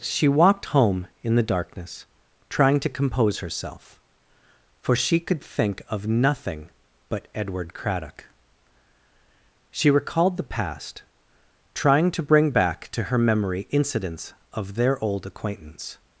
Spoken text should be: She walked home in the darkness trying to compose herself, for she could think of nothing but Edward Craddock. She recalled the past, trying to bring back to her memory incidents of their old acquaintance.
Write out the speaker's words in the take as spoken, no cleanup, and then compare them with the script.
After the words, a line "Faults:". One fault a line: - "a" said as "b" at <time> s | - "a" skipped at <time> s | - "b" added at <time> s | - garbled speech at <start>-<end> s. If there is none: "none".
She walked home in the darkness trying to compose herself, for she could think of nothing but Edward Craddock. She recalled the past, trying to bring back to her memory incidents of their old acquaintance.
Faults:
none